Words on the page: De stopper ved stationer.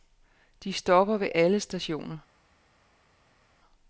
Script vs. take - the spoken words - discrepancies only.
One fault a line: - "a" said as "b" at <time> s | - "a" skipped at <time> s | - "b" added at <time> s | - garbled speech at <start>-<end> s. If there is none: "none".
- "alle" added at 1.3 s